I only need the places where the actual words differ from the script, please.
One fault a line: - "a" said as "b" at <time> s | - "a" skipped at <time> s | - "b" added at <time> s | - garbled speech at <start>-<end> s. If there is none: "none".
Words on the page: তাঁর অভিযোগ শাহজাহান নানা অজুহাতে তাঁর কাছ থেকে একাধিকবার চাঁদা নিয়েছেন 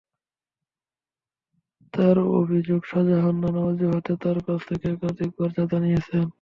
none